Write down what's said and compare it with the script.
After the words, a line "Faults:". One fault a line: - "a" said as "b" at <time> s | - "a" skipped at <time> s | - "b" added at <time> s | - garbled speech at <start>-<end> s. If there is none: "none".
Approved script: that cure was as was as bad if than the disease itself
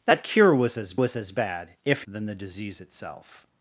that cure was as was as bad if than the disease itself
Faults:
none